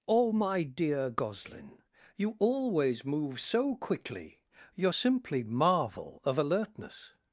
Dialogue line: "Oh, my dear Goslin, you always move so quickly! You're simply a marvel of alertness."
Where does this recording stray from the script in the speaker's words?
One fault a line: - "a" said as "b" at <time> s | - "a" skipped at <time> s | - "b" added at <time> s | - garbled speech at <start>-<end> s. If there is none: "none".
- "a" skipped at 5.4 s